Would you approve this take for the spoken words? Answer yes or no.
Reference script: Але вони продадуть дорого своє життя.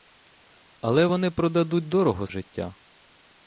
no